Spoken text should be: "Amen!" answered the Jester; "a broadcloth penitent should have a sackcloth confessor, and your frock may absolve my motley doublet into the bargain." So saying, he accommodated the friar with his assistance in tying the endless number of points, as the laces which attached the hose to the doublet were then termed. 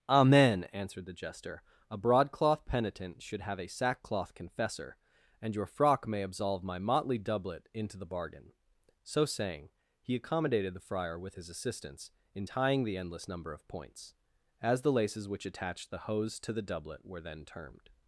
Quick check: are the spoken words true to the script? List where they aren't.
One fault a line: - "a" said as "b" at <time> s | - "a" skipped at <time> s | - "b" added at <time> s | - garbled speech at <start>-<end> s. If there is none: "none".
none